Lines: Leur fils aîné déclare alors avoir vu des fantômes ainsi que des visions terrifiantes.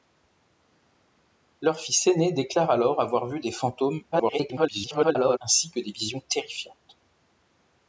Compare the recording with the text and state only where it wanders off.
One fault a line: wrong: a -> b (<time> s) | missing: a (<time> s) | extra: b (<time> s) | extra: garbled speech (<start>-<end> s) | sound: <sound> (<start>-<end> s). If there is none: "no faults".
extra: garbled speech (4.1-5.4 s)